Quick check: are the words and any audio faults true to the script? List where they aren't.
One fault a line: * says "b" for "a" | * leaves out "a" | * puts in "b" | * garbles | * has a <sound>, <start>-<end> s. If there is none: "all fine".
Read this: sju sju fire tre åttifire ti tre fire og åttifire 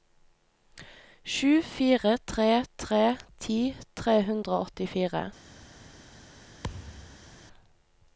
* leaves out "sju"
* says "tre" for "åttifire"
* says "hundre" for "fire"
* has a thud, 6.6-7.3 s